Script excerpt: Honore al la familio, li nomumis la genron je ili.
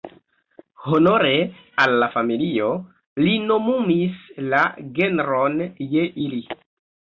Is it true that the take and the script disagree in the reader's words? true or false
false